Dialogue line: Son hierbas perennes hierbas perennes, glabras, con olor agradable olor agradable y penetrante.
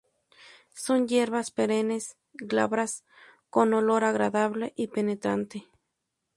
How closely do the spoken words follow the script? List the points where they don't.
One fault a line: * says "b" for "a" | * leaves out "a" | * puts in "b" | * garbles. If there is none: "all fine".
* leaves out "hierbas perennes"
* leaves out "olor agradable"